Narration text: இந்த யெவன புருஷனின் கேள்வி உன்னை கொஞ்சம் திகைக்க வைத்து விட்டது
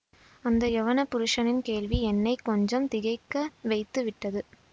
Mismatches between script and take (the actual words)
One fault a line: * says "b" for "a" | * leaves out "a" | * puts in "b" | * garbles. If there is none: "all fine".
* says "அந்த" for "இந்த"
* says "என்னை" for "உன்னை"